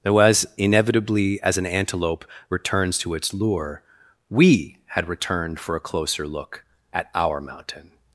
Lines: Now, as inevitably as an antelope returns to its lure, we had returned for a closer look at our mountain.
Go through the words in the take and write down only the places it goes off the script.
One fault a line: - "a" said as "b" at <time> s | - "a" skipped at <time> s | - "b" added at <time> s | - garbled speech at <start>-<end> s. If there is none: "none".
- "Now" said as "Though" at 0.0 s